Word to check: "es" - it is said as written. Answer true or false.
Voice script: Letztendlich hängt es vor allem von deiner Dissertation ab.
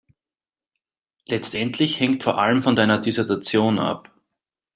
false